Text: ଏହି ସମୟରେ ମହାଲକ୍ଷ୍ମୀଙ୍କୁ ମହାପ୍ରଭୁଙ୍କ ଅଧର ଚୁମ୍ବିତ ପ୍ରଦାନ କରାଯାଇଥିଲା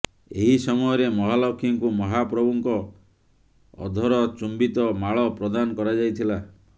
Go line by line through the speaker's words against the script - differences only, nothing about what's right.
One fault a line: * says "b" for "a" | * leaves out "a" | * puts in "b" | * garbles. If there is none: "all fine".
* puts in "ମାଳ"